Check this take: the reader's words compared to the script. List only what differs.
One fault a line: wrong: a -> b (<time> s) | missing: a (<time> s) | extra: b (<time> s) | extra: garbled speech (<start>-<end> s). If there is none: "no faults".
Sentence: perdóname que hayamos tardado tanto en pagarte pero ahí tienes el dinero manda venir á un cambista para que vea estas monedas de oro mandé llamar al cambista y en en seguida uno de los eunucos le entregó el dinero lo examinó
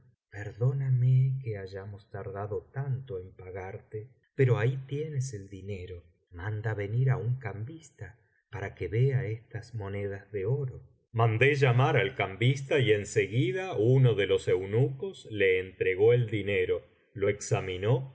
missing: en (13.1 s)